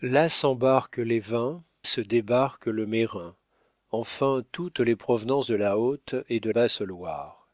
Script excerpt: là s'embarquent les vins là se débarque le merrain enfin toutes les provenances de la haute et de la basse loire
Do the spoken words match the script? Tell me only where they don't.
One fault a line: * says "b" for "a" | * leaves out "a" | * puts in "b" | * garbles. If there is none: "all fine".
* leaves out "là"
* leaves out "la"